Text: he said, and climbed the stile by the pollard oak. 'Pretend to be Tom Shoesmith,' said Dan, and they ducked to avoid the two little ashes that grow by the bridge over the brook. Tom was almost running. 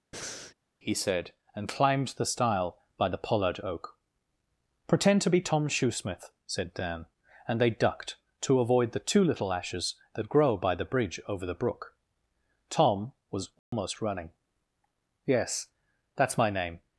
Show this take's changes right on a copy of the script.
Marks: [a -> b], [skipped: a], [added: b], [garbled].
he said, and climbed the stile by the pollard oak. 'Pretend to be Tom Shoesmith,' said Dan, and they ducked to avoid the two little ashes that grow by the bridge over the brook. Tom was almost running. [added: Yes That's my name]